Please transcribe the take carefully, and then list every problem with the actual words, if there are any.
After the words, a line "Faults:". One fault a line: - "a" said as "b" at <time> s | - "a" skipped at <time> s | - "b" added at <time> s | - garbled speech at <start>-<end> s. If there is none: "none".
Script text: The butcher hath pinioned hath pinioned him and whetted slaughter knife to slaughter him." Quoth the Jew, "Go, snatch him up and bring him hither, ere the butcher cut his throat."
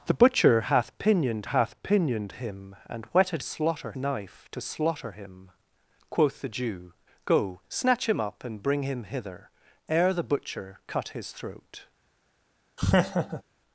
The butcher hath pinioned hath pinioned him and whetted slaughter knife to slaughter him." Quoth the Jew, "Go, snatch him up and bring him hither, ere the butcher cut his throat."
Faults:
none